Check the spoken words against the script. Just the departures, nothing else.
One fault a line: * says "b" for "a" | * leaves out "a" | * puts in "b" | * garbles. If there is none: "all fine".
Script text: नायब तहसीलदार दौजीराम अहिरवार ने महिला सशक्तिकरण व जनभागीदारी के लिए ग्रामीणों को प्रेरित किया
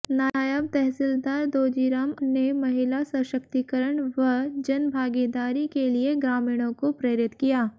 * leaves out "अहिरवार"